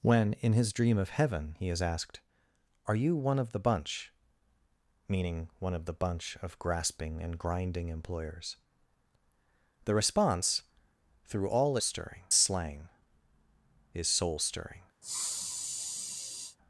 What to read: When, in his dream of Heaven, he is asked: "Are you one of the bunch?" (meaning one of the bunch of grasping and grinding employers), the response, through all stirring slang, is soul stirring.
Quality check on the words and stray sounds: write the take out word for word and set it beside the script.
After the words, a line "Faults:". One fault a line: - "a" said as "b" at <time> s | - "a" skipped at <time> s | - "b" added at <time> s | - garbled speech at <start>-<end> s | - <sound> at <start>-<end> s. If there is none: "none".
When, in his dream of Heaven, he is asked: "Are you one of the bunch?" (meaning one of the bunch of grasping and grinding employers), the response, through all stirring slang, is soul stirring.
Faults:
- sniff at 15.0-16.6 s